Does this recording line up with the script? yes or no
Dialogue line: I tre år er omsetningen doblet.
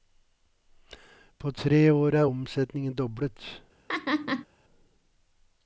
no